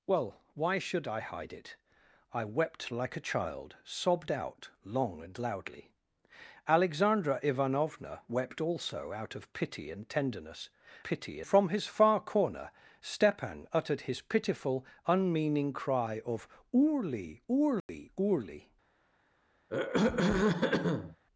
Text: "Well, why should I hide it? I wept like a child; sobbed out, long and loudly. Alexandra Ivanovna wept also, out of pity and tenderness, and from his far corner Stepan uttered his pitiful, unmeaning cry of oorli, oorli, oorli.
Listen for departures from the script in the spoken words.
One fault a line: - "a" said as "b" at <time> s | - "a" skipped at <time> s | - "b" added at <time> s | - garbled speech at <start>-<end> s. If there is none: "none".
- "and" said as "pity" at 11.0 s